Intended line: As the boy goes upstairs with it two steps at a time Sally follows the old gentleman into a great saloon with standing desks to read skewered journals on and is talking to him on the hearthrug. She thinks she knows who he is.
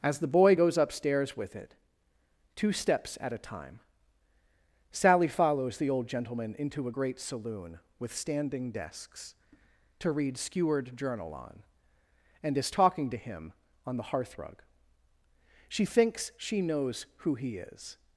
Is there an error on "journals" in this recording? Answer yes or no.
yes